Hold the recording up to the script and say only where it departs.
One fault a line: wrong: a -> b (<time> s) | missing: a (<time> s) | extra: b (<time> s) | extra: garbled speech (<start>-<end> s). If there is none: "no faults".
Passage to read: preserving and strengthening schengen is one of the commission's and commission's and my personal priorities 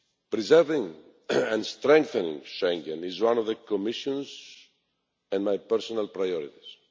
missing: commission's and (5.5 s)